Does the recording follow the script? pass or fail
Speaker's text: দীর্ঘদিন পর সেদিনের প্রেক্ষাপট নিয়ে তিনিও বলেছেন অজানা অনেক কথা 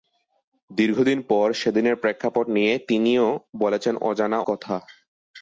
fail